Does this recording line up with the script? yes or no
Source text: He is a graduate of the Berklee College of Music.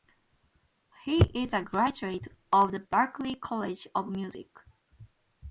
yes